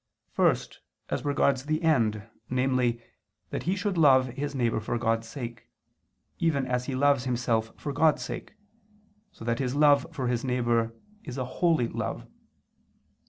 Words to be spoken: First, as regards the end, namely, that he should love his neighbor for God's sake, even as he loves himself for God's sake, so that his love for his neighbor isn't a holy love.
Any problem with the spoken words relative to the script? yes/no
yes